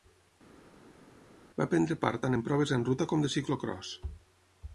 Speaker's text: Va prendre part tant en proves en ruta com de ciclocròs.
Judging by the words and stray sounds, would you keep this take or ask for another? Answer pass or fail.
pass